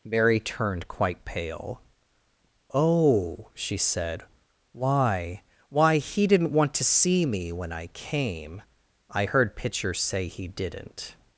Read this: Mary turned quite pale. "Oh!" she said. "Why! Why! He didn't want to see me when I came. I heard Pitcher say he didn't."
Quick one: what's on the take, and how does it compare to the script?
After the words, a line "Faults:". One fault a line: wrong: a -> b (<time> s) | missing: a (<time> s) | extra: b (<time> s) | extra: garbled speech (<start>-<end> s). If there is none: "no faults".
Mary turned quite pale. "Oh!" she said. "Why! Why! He didn't want to see me when I came. I heard Pitcher say he didn't."
Faults:
no faults